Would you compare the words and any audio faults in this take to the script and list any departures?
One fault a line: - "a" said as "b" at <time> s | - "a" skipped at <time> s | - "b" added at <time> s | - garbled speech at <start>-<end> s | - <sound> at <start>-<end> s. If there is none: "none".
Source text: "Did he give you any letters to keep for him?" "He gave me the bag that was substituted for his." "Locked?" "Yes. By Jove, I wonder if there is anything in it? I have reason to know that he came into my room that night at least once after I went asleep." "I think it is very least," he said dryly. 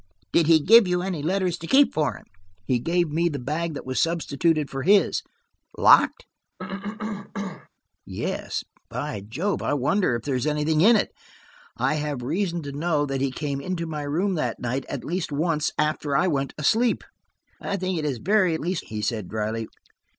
- cough at 6.6-7.7 s